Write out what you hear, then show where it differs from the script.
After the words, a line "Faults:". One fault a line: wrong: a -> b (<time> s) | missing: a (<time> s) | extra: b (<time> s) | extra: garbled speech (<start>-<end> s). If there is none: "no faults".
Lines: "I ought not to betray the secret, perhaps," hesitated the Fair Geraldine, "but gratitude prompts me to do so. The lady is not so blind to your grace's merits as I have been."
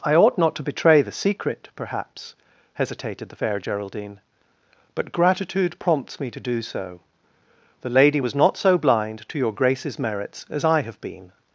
"I ought not to betray the secret, perhaps," hesitated the Fair Geraldine, "but gratitude prompts me to do so. The lady was not so blind to your grace's merits as I have been."
Faults:
wrong: is -> was (8.2 s)